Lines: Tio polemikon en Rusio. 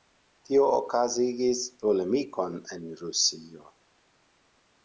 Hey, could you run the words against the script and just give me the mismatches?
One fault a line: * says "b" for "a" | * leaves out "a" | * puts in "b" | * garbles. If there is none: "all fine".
* puts in "okazigis"